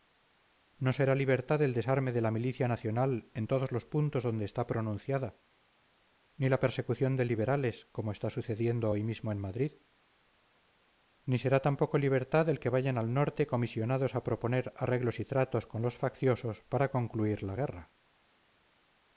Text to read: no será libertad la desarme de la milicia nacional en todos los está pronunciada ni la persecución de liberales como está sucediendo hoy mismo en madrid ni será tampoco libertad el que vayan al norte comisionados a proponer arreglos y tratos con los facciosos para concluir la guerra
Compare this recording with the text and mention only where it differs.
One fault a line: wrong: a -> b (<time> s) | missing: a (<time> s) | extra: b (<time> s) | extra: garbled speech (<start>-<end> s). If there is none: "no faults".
wrong: la -> el (1.6 s)
extra: puntos donde (3.9 s)